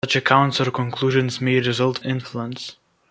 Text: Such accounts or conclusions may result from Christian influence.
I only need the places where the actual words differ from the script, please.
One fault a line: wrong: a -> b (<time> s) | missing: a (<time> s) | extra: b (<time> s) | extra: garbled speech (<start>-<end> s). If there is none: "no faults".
missing: from Christian (2.0 s)